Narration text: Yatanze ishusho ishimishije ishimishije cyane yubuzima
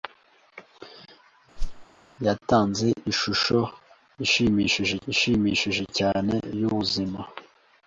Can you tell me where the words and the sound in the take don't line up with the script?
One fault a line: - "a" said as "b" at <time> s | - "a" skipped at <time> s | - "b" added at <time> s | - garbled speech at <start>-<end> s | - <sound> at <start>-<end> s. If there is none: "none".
- whoosh at 1.6-1.9 s